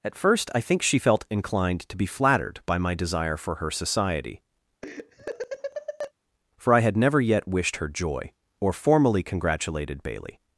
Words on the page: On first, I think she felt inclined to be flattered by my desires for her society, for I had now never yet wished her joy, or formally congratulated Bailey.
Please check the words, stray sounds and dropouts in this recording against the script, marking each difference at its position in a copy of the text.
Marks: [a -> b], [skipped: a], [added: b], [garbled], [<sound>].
[On -> At] first, I think she felt inclined to be flattered by my [desires -> desire] for her society, [laugh] for I had [skipped: now] never yet wished her joy, or formally congratulated Bailey.